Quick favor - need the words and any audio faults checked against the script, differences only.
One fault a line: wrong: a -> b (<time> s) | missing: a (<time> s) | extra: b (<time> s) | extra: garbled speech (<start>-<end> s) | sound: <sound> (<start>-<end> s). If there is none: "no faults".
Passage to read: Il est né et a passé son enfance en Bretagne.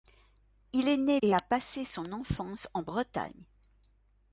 no faults